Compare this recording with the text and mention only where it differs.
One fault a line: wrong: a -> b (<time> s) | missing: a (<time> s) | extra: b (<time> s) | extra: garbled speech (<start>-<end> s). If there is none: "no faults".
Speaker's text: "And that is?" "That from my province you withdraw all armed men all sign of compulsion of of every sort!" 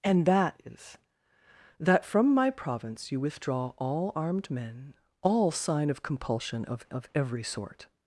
no faults